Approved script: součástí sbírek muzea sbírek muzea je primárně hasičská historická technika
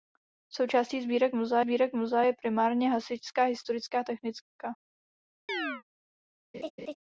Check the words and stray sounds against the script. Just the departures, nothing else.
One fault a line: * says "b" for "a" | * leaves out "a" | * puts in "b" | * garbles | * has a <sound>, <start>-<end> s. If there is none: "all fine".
* has a chirp, 5.5-5.8 s
* has a laugh, 6.5-7.0 s